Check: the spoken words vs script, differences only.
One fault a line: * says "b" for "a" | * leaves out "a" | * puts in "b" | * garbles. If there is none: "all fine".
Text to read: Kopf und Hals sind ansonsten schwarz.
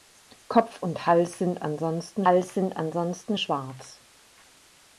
* puts in "Hals sind ansonsten"